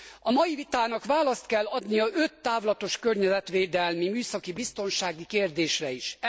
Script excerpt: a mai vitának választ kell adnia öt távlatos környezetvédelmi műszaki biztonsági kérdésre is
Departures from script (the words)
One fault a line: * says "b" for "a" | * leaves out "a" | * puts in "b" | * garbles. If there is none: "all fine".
all fine